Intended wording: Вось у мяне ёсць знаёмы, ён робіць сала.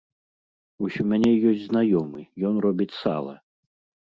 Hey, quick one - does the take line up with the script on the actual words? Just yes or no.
yes